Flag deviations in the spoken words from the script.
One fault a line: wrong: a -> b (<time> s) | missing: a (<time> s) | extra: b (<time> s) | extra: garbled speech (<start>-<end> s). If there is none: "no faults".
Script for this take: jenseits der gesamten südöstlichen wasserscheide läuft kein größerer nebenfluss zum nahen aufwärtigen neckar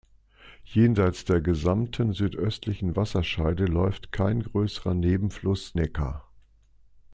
missing: zum nahen aufwärtigen (5.8 s)